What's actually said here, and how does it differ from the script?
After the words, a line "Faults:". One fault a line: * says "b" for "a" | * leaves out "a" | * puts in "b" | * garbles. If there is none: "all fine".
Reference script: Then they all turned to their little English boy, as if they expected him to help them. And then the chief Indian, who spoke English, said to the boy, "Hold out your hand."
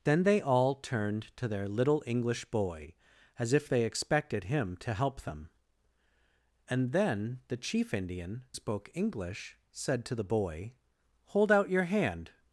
Then they all turned to their little English boy, as if they expected him to help them. And then the chief Indian, spoke English, said to the boy, "Hold out your hand."
Faults:
* leaves out "who"